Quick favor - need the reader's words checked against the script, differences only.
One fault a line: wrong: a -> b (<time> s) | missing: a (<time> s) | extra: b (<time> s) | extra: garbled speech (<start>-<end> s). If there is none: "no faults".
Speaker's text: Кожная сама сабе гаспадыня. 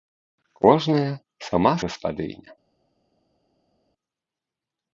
missing: сабе (1.7 s)